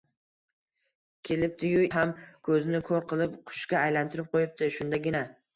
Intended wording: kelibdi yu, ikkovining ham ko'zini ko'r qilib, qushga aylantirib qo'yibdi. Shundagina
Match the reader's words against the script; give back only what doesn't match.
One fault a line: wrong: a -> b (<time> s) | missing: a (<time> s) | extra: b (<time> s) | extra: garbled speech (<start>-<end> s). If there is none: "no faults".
missing: ikkovining (1.8 s)